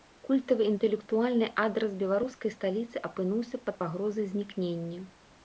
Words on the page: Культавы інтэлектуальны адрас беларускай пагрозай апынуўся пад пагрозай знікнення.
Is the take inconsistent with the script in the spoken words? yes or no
yes